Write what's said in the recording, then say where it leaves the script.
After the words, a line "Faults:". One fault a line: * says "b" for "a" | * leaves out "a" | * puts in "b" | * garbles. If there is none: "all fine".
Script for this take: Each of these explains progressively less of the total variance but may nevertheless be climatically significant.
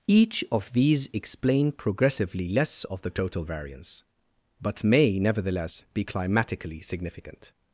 Each of these explain progressively less of the total variance but may nevertheless be climatically significant.
Faults:
* says "explain" for "explains"